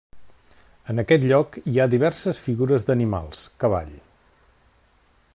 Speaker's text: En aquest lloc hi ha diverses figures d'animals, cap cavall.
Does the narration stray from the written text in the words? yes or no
yes